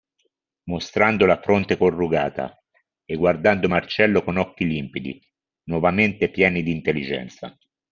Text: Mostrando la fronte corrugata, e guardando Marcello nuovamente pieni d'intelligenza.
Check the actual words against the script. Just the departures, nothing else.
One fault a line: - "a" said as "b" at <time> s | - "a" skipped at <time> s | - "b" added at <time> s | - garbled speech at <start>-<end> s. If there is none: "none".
- "con occhi limpidi" added at 4.2 s